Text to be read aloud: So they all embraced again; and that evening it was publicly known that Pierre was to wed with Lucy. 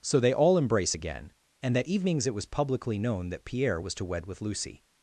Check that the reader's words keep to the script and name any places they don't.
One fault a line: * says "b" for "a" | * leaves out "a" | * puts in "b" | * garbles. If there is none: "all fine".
* says "embrace" for "embraced"
* says "evenings" for "evening"